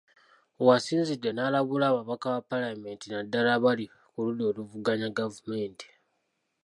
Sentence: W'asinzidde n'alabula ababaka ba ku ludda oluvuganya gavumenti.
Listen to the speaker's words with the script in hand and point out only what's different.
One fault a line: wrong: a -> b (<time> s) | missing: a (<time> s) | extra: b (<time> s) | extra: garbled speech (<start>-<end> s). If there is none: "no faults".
extra: paalamenti naddala abali (2.5 s)